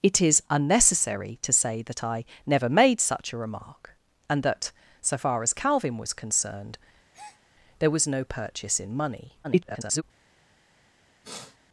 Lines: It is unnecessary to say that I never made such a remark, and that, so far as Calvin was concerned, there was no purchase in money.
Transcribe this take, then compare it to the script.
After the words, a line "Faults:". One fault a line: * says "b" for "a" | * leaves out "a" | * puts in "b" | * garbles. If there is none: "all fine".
It is unnecessary to say that I never made such a remark, and that, so far as Calvin was concerned, there was no purchase in money. [garbled]
Faults:
* garbles